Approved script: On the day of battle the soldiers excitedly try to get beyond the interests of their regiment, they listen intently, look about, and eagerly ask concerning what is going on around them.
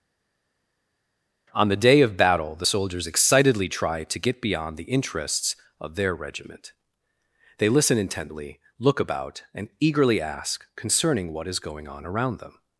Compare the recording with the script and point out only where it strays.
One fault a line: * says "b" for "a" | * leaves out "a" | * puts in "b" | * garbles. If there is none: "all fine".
all fine